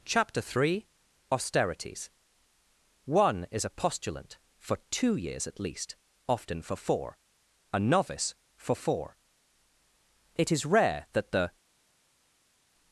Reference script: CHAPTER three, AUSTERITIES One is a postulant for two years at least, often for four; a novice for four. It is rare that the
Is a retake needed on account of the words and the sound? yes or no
no